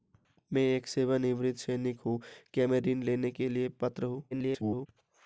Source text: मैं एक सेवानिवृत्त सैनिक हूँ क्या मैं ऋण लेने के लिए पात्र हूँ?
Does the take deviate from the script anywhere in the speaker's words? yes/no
yes